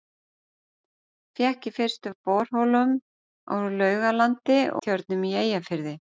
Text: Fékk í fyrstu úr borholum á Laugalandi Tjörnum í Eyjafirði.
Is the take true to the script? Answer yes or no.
yes